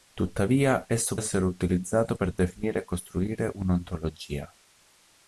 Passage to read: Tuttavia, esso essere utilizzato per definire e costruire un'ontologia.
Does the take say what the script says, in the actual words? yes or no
yes